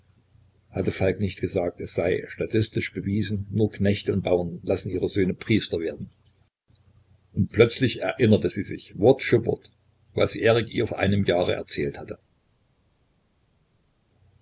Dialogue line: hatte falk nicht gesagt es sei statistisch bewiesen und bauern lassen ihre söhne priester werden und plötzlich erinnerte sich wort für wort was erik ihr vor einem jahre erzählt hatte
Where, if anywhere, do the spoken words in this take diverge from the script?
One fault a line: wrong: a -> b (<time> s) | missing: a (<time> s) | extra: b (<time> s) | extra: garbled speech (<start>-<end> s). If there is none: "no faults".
extra: nur knechte (3.5 s)
extra: sie (8.5 s)